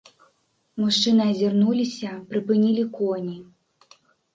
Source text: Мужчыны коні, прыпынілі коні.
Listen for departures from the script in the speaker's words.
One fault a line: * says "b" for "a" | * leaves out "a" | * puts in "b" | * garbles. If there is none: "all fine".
* says "азірнуліся" for "коні"